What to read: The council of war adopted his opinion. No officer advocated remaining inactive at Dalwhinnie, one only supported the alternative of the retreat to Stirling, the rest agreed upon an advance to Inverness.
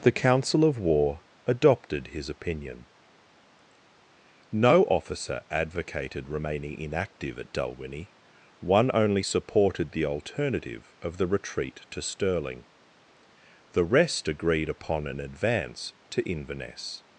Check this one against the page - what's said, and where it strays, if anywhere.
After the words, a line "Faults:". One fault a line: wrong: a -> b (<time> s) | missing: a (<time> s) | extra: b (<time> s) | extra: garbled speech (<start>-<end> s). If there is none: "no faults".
The council of war adopted his opinion. No officer advocated remaining inactive at Dalwhinnie, one only supported the alternative of the retreat to Stirling, the rest agreed upon an advance to Inverness.
Faults:
no faults